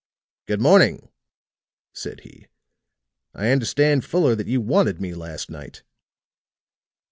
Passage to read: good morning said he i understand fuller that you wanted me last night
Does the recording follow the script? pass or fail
pass